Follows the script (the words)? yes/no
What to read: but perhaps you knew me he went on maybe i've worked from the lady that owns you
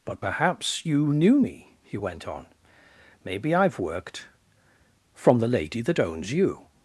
yes